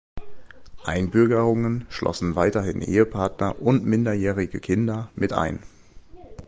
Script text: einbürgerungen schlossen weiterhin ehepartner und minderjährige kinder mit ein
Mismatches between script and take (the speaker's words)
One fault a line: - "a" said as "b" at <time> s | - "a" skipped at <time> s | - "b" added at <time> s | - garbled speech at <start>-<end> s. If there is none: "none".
none